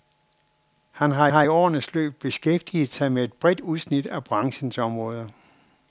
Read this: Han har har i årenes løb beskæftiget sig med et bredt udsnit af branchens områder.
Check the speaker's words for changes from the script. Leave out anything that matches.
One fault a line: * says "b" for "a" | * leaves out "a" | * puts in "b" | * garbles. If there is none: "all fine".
all fine